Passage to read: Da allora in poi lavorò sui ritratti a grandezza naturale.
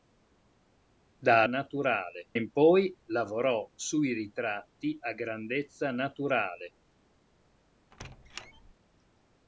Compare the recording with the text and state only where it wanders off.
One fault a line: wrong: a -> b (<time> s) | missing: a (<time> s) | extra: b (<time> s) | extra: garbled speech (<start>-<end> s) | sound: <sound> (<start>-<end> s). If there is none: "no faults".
wrong: allora -> naturale (1.4 s)
sound: squeak (7.9-8.7 s)